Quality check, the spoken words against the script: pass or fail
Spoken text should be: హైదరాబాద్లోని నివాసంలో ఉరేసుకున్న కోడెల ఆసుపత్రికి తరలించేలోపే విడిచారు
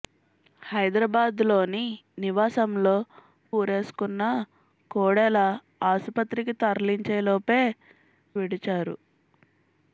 pass